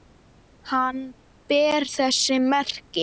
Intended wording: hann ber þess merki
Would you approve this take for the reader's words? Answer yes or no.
yes